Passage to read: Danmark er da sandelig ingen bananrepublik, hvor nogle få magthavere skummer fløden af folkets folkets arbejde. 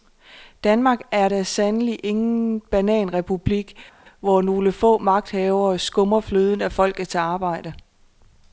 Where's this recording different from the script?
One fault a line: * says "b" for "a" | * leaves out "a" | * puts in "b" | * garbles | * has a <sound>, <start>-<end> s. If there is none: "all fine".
* leaves out "folkets"